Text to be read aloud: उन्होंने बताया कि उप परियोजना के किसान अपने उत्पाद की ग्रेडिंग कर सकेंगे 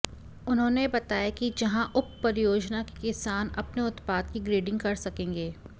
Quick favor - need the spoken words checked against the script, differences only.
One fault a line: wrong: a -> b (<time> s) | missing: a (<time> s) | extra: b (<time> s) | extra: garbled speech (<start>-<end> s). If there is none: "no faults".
extra: जहां (1.6 s)